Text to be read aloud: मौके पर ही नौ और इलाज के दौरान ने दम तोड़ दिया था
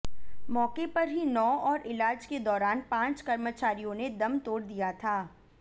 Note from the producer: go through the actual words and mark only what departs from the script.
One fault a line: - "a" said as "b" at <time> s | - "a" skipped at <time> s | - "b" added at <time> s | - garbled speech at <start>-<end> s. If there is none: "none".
- "पांच कर्मचारियों" added at 2.9 s